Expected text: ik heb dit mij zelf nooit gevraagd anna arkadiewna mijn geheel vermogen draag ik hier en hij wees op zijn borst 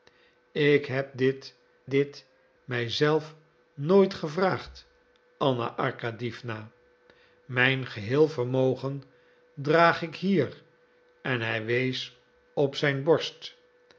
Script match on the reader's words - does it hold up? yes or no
no